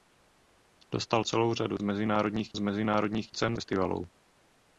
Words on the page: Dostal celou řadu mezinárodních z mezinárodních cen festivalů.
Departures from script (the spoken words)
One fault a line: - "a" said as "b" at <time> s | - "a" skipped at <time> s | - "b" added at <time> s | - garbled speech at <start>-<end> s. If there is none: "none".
none